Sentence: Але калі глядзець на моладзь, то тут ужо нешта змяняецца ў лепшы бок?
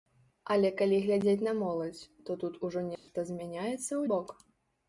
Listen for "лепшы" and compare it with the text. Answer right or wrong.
wrong